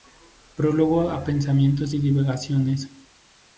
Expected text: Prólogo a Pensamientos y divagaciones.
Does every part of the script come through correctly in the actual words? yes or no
yes